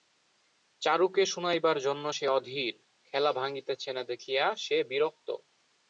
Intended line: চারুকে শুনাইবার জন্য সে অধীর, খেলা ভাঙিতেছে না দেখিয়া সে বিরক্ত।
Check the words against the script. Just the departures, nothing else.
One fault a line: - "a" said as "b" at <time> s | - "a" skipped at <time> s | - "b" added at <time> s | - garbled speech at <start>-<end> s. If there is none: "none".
none